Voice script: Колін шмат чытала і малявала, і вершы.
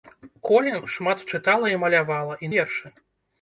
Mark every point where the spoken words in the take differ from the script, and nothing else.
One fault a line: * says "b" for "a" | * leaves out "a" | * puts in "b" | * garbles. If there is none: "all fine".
all fine